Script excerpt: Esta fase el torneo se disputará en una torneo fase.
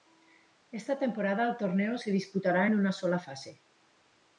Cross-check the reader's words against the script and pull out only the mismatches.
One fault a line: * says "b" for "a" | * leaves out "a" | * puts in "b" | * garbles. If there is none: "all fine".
* says "temporada" for "fase"
* says "sola" for "torneo"